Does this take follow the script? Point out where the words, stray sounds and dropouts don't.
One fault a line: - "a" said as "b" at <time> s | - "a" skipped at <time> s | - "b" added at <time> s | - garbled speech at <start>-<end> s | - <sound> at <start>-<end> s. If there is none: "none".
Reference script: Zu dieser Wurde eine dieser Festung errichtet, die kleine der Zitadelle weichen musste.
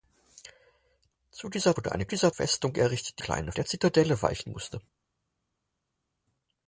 none